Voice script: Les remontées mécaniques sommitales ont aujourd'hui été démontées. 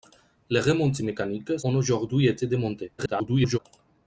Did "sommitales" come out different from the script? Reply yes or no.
yes